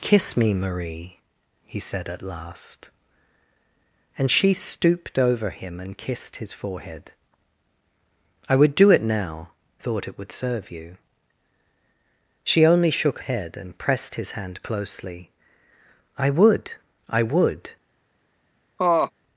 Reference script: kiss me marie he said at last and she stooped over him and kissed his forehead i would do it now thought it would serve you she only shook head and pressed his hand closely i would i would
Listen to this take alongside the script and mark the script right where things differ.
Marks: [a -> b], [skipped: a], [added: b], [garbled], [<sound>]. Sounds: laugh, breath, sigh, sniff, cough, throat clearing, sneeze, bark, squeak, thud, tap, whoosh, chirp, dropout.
kiss me marie he said at last and she stooped over him and kissed his forehead i would do it now thought it would serve you she only shook head and pressed his hand closely i would i would [laugh]